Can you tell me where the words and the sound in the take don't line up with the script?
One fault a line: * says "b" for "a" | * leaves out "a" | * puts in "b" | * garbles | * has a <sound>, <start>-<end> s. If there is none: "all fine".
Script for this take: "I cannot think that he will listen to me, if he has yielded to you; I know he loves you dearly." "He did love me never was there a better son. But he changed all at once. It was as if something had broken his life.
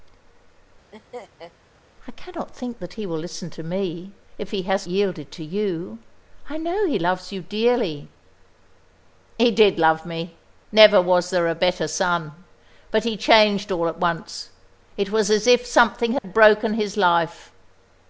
* has a laugh, 0.9-1.5 s
* has a dropout, 16.2-16.2 s